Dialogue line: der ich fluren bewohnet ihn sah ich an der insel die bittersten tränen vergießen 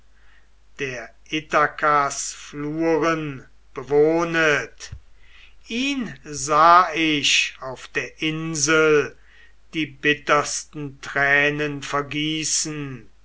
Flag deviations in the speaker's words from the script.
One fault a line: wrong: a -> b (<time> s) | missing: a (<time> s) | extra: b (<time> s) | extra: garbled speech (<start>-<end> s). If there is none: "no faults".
wrong: ich -> ithakas (1.3 s)
wrong: an -> auf (7.6 s)